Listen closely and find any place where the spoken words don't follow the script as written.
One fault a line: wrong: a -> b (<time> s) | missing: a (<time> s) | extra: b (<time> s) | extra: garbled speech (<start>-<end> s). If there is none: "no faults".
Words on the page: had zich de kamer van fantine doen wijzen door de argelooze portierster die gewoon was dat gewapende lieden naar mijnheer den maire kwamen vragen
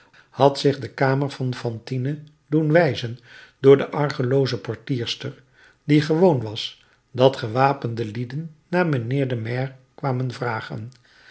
no faults